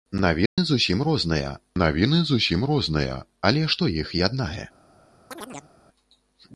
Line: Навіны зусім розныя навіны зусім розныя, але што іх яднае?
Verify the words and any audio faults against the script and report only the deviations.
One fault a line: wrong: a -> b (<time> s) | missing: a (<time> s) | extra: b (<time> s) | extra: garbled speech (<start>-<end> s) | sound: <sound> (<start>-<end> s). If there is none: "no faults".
sound: dropout (0.5-0.6 s)
sound: chirp (5.3-5.7 s)